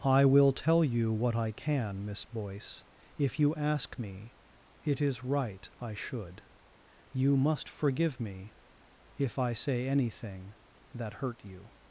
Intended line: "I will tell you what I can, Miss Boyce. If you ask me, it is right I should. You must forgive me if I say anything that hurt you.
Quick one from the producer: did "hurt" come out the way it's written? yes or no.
yes